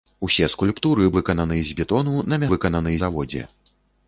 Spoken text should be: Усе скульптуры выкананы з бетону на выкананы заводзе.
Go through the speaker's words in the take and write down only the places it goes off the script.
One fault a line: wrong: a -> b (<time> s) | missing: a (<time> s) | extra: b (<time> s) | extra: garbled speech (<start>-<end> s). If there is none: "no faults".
no faults